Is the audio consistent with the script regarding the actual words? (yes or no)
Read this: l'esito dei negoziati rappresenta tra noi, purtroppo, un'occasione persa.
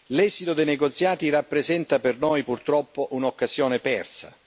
no